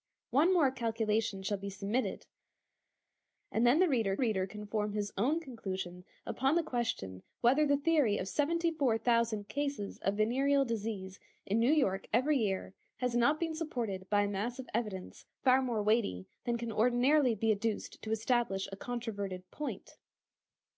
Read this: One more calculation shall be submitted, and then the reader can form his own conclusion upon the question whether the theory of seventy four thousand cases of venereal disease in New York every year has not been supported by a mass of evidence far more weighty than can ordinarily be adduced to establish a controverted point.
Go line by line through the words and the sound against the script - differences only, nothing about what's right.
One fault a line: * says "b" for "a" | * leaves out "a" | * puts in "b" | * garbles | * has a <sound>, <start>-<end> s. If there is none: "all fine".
* puts in "reader"